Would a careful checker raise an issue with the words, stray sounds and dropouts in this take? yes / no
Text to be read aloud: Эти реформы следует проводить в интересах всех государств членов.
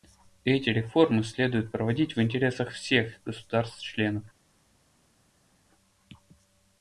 no